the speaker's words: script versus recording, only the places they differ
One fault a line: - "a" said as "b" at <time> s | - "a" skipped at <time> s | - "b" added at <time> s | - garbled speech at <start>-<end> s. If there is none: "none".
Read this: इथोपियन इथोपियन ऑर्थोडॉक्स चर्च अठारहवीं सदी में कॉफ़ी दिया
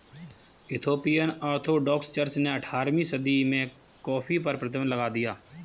- "इथोपियन" skipped at 1.3 s
- "ने" added at 2.4 s
- "पर प्रतिबन्ध लगा" added at 4.4 s